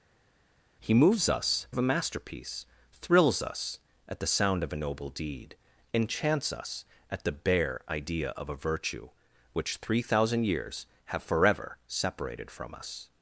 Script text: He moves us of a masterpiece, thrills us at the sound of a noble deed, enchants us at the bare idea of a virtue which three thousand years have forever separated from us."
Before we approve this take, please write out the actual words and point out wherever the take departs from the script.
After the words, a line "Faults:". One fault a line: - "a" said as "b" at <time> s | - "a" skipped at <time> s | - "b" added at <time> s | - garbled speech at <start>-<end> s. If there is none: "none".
He moves us of a masterpiece, thrills us at the sound of a noble deed, enchants us at the bare idea of a virtue which three thousand years have forever separated from us."
Faults:
none